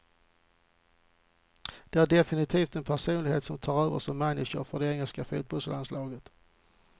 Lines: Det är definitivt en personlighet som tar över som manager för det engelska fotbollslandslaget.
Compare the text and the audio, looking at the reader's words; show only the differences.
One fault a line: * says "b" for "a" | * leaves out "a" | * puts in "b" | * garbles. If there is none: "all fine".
all fine